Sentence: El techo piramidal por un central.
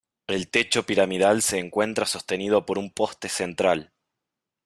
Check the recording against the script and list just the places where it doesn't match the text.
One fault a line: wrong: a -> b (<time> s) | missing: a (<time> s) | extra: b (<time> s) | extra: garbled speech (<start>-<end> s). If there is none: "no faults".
extra: se encuentra sostenido (1.4 s)
extra: poste (2.9 s)